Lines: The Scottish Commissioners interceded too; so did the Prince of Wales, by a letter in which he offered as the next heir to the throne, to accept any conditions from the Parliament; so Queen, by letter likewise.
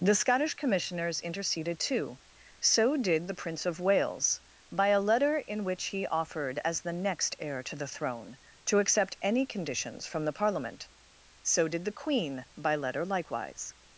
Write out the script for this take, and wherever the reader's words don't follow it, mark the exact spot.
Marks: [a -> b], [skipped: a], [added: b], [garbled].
The Scottish Commissioners interceded too; so did the Prince of Wales, by a letter in which he offered as the next heir to the throne, to accept any conditions from the Parliament; so [added: did the] Queen, by letter likewise.